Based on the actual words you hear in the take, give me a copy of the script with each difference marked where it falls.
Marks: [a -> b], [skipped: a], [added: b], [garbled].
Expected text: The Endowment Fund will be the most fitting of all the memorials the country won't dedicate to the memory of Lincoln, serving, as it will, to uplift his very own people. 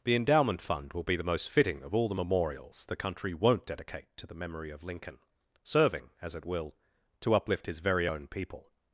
The Endowment Fund will be the most fitting of all the memorials the country won't dedicate to the memory of Lincoln, serving, as it will, to uplift his very own people.